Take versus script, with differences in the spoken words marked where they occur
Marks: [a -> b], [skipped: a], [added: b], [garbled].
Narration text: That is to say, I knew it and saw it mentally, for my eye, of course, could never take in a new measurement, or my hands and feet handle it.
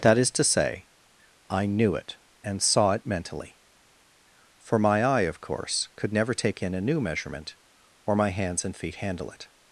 That is to say, I knew it and saw it mentally, for my eye, of course, could never take in a new measurement, or my hands and feet handle it.